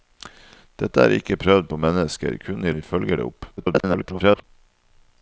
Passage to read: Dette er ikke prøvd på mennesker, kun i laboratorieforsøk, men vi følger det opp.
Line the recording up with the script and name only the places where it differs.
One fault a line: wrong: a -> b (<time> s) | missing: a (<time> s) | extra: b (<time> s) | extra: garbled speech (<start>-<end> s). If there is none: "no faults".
missing: laboratorieforsøk men (2.7 s)
extra: garbled speech (3.6-4.4 s)